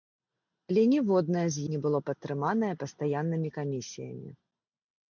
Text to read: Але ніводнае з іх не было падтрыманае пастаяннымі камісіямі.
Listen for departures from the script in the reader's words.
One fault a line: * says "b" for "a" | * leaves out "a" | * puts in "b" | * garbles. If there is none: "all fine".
* leaves out "іх"